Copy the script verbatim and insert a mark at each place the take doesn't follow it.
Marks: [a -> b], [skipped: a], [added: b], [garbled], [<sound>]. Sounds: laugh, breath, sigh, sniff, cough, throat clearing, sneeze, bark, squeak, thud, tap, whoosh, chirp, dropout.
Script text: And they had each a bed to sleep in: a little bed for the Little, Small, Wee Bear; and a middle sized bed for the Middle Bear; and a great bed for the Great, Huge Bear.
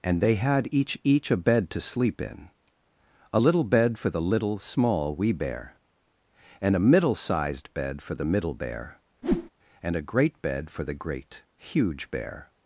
And they had each [added: each] a bed to sleep in: a little bed for the Little, Small, Wee Bear; and a middle sized bed for the Middle Bear; [whoosh] and a great bed for the Great, Huge Bear.